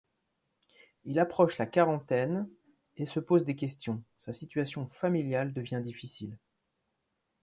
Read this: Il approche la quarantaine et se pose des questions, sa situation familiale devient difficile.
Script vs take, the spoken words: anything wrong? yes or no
no